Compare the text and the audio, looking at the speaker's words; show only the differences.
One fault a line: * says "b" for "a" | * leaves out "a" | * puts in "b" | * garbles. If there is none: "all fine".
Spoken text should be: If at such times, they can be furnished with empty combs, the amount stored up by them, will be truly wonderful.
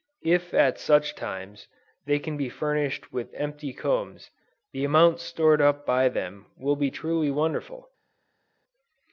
all fine